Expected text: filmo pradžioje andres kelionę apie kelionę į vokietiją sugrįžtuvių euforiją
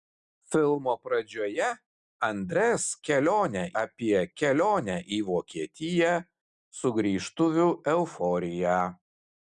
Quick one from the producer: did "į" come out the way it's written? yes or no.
yes